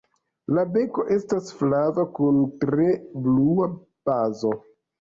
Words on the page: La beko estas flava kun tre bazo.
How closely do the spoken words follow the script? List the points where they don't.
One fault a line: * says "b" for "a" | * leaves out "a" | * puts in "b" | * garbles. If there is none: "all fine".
* puts in "blua"